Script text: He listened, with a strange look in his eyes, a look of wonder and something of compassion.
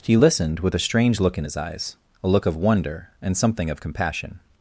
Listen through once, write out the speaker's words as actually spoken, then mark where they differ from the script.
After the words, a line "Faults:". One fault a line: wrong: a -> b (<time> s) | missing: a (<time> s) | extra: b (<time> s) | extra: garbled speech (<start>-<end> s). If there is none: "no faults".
He listened, with a strange look in his eyes, a look of wonder and something of compassion.
Faults:
no faults